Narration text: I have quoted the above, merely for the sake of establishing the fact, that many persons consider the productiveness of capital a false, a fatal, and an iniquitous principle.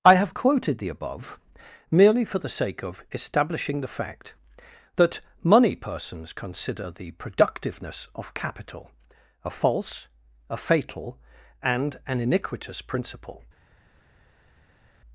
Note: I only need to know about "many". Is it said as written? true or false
false